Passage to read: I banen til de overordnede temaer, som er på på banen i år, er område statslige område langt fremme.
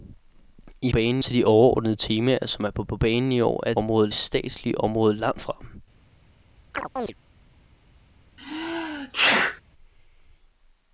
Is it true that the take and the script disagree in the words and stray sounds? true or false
true